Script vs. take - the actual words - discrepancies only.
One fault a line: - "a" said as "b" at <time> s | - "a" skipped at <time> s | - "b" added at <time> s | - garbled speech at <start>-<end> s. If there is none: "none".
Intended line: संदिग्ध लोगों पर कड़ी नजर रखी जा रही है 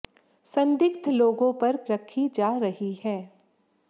- "कड़ी नजर" skipped at 1.8 s